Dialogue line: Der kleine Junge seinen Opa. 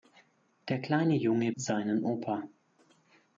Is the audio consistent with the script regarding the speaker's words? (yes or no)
yes